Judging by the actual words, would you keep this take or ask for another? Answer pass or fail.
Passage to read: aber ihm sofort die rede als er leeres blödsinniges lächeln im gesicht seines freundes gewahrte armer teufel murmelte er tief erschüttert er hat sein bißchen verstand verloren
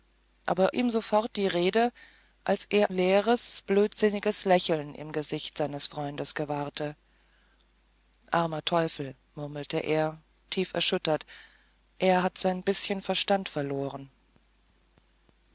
pass